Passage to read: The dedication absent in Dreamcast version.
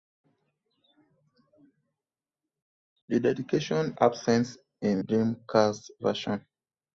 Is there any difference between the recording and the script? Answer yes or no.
no